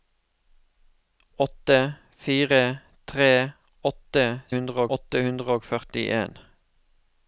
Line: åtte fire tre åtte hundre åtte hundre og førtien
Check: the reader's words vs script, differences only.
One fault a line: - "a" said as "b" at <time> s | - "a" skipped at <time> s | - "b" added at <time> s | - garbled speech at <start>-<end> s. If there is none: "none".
none